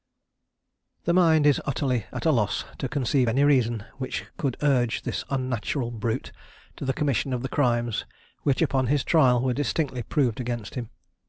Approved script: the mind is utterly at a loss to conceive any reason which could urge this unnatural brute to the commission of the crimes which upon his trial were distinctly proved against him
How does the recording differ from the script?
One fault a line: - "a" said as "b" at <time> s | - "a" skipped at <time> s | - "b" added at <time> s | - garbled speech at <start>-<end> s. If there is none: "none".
none